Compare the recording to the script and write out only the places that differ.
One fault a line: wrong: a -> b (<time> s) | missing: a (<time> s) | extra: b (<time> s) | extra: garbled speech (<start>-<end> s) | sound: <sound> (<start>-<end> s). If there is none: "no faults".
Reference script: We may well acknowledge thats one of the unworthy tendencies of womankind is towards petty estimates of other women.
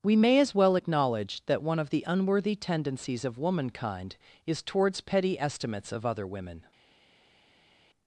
extra: as (0.4 s)
wrong: thats -> that (1.4 s)